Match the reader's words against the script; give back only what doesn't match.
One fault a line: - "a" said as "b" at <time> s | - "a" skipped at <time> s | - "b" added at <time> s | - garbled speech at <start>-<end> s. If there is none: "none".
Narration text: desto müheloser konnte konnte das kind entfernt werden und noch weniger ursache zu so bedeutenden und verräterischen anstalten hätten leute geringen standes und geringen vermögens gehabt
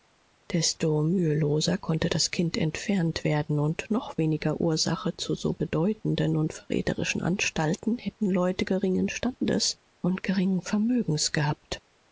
- "konnte" skipped at 2.1 s